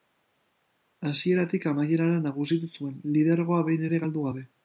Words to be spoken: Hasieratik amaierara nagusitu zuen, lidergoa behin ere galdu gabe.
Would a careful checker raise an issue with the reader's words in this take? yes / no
no